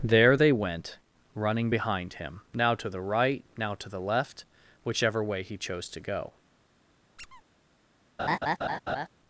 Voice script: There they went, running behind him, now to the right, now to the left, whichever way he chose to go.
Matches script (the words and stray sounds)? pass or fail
fail